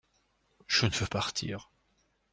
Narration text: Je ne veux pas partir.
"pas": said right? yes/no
no